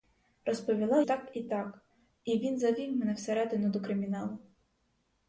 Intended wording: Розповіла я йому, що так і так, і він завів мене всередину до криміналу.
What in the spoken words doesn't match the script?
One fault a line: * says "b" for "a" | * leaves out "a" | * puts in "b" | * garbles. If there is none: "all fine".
* leaves out "я йому що"